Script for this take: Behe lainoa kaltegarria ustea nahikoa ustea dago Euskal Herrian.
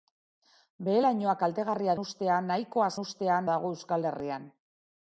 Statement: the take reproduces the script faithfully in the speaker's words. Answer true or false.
true